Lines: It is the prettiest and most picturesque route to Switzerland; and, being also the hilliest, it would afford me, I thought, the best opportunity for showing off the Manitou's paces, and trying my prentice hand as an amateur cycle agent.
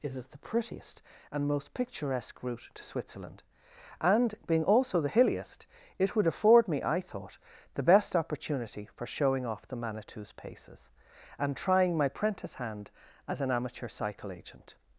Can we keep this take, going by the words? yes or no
yes